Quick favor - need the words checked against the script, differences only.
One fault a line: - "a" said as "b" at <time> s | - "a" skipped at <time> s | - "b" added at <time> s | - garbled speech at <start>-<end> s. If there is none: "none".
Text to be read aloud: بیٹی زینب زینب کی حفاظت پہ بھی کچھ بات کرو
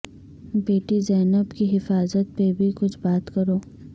- "زینب" skipped at 1.5 s